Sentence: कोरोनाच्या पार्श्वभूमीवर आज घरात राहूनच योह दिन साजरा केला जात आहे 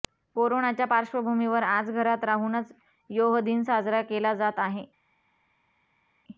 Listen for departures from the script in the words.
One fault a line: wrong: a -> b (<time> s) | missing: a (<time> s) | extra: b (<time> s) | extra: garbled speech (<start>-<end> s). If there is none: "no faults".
no faults